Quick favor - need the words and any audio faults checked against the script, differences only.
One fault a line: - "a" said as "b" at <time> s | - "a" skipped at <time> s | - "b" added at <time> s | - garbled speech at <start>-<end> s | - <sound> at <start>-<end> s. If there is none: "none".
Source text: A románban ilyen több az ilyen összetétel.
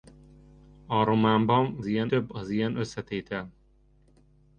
none